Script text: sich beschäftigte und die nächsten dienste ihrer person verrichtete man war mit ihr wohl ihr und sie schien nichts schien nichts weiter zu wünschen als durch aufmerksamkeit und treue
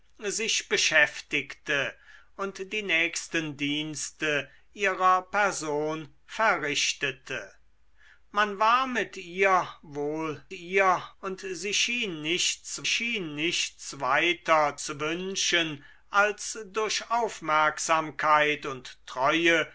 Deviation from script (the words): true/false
false